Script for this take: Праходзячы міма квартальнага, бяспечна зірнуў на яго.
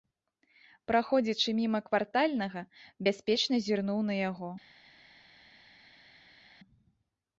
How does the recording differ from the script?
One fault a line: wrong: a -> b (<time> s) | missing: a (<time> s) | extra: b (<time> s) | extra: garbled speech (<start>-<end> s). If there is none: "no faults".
no faults